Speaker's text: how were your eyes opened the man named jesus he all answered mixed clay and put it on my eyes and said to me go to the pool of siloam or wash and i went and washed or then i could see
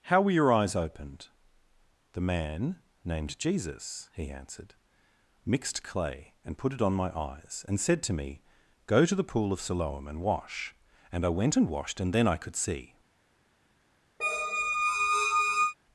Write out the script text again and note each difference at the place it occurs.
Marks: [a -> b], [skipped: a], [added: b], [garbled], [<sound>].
how were your eyes opened the man named jesus he [skipped: all] answered mixed clay and put it on my eyes and said to me go to the pool of siloam [or -> and] wash and i went and washed [or -> and] then i could see [squeak]